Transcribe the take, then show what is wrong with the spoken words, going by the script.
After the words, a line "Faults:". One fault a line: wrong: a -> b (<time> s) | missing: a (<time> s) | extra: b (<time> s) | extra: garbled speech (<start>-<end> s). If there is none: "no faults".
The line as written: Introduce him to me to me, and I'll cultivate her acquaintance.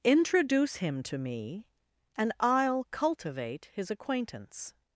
Introduce him to me, and I'll cultivate his acquaintance.
Faults:
missing: to me (1.7 s)
wrong: her -> his (3.7 s)